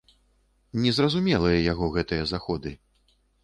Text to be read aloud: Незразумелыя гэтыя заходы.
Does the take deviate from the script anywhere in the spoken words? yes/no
yes